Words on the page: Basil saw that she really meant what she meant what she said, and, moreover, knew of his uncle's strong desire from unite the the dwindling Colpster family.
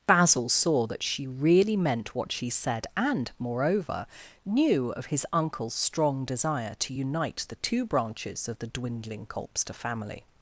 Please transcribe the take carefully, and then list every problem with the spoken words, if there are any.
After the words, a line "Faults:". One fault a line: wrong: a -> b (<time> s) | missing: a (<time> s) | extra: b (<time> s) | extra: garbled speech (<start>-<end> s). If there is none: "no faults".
Basil saw that she really meant what she said, and, moreover, knew of his uncle's strong desire to unite the two branches of the dwindling Colpster family.
Faults:
missing: meant what she (2.5 s)
wrong: from -> to (6.8 s)
extra: two branches of (7.6 s)